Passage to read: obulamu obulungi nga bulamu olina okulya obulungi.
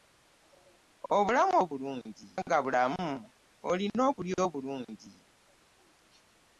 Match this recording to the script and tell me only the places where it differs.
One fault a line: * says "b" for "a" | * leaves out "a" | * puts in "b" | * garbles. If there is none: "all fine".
all fine